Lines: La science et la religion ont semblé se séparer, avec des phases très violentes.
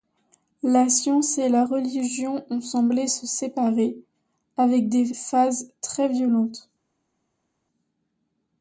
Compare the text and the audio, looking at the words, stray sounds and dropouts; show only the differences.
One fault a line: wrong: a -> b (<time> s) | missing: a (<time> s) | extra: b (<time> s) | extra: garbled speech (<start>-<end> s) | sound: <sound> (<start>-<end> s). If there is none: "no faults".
no faults